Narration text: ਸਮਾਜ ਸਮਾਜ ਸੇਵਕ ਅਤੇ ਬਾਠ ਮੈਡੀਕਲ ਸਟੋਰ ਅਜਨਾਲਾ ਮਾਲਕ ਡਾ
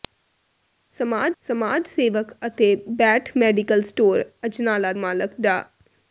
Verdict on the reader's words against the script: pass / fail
pass